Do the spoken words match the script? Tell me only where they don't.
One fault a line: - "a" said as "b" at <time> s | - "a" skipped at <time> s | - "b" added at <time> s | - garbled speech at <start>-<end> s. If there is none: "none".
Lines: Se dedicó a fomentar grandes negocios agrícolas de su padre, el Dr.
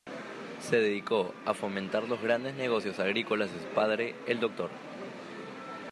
- "los" added at 2.1 s